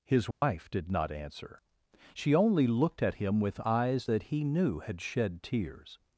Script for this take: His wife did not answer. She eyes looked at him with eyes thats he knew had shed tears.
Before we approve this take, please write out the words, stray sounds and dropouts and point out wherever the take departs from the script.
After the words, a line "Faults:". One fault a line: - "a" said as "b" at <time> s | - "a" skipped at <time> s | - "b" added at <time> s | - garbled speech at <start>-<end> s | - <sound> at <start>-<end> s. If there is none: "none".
His wife did not answer. She only looked at him with eyes that he knew had shed tears.
Faults:
- dropout at 0.3-0.4 s
- "eyes" said as "only" at 2.4 s
- "thats" said as "that" at 4.0 s